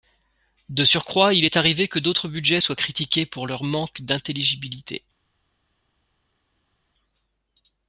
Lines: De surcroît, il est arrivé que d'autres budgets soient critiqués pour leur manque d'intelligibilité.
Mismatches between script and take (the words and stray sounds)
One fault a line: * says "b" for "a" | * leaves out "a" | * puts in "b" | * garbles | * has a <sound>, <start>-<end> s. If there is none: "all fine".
all fine